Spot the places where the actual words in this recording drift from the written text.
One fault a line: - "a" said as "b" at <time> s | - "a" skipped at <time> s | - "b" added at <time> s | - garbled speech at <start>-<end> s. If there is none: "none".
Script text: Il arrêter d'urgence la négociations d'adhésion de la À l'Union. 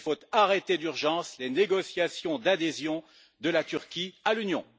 - "faut" added at 0.0 s
- "la" said as "les" at 1.4 s
- "Turquie" added at 3.6 s